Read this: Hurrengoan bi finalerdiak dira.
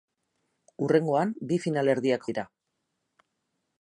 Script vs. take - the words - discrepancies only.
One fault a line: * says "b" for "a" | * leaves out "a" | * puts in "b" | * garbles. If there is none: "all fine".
all fine